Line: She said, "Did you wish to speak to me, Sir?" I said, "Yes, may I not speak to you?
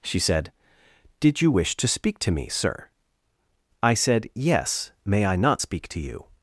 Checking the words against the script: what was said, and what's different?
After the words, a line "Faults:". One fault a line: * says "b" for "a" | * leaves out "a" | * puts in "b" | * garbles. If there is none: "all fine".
She said, "Did you wish to speak to me, Sir?" I said, "Yes, may I not speak to you?
Faults:
all fine